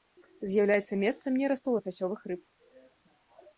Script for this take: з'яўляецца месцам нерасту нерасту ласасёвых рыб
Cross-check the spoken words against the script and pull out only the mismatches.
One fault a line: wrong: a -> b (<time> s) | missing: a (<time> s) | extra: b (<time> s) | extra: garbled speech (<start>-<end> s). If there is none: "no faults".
missing: нерасту (1.8 s)